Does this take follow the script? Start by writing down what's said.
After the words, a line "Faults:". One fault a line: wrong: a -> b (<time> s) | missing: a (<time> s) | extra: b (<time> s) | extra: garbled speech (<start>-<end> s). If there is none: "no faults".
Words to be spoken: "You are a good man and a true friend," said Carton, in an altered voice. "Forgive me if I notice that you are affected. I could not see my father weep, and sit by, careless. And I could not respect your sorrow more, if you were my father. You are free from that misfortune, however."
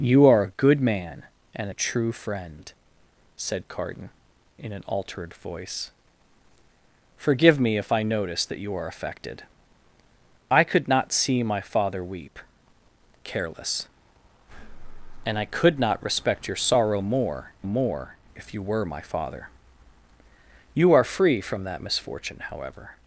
"You are a good man and a true friend," said Carton, in an altered voice. "Forgive me if I notice that you are affected. I could not see my father weep, careless. And I could not respect your sorrow more more, if you were my father. You are free from that misfortune, however."
Faults:
missing: and sit by (12.4 s)
extra: more (17.6 s)